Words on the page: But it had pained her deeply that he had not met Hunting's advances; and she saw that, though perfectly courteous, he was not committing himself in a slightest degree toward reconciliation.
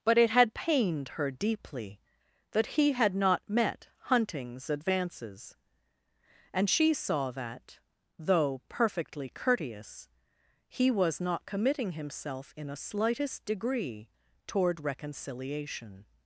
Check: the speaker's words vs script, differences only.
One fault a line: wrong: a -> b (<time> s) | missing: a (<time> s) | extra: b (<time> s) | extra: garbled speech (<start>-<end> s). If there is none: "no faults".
no faults